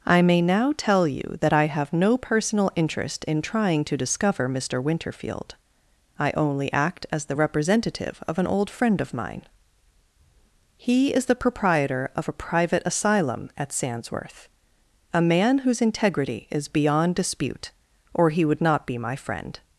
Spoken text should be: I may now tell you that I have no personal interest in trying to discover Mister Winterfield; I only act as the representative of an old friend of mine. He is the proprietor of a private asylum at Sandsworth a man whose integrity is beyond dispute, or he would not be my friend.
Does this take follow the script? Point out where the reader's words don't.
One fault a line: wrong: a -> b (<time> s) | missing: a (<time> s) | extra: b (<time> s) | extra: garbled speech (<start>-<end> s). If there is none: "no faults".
no faults